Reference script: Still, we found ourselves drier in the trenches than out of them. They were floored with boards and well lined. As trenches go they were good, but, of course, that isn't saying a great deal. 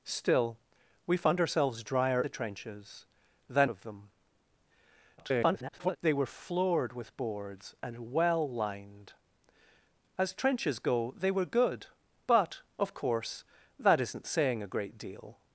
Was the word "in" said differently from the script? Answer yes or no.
yes